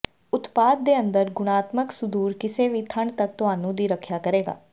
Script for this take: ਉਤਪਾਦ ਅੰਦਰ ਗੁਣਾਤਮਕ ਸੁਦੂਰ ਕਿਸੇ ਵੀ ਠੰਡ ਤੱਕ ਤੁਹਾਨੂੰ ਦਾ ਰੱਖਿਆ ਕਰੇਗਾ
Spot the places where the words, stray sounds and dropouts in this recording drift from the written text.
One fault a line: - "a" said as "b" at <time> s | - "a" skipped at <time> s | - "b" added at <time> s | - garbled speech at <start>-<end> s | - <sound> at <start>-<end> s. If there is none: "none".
- "ਦੇ" added at 0.8 s
- "ਦਾ" said as "ਦੀ" at 3.8 s